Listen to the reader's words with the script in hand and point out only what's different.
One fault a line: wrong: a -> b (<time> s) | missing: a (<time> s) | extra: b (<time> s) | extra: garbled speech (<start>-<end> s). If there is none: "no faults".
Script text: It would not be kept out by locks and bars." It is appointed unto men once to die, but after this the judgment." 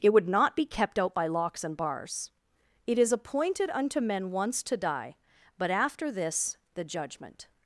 no faults